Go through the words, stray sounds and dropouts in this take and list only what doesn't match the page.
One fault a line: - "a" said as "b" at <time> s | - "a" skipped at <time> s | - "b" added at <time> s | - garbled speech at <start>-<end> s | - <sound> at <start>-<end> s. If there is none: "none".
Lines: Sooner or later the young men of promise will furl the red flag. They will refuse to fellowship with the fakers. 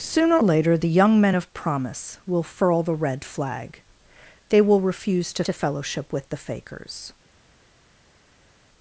- "or" skipped at 0.4 s
- "to" added at 5.4 s